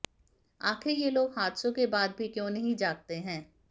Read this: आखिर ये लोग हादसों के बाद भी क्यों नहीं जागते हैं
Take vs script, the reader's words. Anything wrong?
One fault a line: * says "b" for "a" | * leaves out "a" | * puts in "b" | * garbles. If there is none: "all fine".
all fine